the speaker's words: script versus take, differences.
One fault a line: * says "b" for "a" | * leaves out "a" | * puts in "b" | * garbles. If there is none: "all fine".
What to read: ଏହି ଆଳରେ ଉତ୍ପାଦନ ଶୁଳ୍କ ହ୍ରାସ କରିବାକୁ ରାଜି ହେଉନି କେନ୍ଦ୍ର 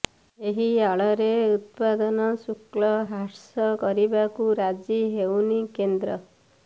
all fine